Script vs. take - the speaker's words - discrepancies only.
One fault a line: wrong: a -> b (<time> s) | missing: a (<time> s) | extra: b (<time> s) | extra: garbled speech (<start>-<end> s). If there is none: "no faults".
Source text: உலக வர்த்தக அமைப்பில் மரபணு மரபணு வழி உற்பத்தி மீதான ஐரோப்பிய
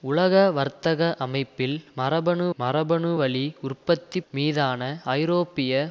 no faults